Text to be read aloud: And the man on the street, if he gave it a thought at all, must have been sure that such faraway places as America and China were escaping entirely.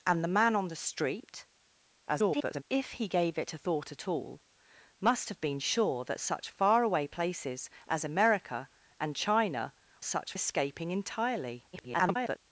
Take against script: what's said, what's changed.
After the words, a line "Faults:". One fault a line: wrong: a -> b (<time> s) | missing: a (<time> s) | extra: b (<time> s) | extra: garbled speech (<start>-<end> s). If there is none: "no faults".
And the man on the street, [garbled] if he gave it a thought at all, must have been sure that such faraway places as America and China such escaping entirely. [garbled]
Faults:
extra: garbled speech (2.1-2.6 s)
wrong: were -> such (10.0 s)
extra: garbled speech (11.7-12.4 s)